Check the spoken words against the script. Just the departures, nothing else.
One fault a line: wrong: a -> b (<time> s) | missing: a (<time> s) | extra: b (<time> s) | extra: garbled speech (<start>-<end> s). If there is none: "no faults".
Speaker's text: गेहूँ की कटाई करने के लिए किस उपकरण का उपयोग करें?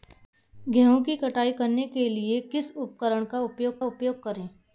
extra: उपयोग (3.8 s)